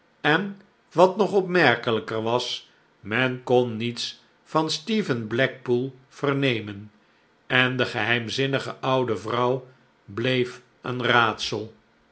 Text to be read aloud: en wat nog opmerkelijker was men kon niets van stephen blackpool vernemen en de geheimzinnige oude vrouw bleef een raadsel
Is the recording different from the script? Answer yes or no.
no